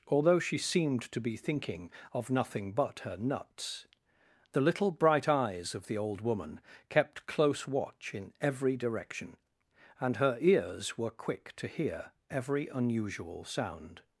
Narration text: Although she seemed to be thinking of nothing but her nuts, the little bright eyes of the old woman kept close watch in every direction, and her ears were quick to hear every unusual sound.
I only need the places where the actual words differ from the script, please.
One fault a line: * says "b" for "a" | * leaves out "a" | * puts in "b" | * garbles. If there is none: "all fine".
all fine